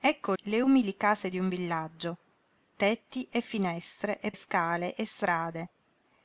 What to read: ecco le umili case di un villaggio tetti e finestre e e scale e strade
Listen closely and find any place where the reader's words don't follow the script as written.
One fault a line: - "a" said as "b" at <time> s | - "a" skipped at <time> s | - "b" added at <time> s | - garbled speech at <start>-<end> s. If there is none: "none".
none